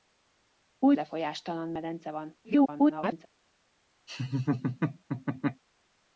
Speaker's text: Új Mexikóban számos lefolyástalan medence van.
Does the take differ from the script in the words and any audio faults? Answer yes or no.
yes